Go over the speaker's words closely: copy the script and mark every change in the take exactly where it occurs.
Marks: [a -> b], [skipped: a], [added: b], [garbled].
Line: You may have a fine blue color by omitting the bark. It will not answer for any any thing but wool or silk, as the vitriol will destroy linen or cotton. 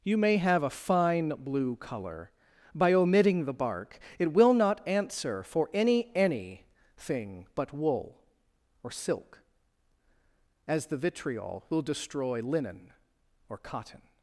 You may have a fine blue color by omitting the bark. It will not answer for any any thing but wool or silk, as the vitriol will destroy linen or cotton.